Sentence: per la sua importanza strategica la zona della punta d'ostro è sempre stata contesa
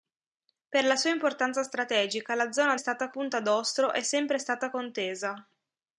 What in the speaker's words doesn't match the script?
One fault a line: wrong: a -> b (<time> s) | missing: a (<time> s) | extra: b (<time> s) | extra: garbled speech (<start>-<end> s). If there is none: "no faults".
wrong: della -> stata (2.8 s)